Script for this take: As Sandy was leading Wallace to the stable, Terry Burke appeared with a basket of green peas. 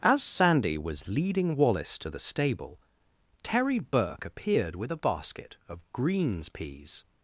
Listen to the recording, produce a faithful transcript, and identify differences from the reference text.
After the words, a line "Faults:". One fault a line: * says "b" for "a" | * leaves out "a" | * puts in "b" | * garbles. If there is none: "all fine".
As Sandy was leading Wallace to the stable, Terry Burke appeared with a basket of greens peas.
Faults:
* says "greens" for "green"